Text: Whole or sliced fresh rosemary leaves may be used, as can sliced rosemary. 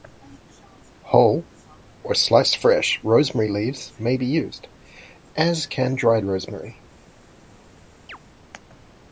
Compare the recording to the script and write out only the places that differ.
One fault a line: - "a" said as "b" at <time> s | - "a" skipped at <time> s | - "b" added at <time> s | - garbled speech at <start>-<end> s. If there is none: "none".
- "sliced" said as "dried" at 6.0 s